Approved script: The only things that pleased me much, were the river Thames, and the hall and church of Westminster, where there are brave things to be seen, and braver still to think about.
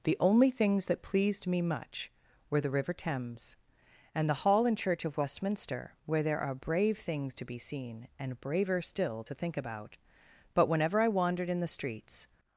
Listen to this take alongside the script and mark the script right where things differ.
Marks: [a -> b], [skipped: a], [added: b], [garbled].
The only things that pleased me much, were the river Thames, and the hall and church of Westminster, where there are brave things to be seen, and braver still to think about. [added: But whenever I wandered in the streets]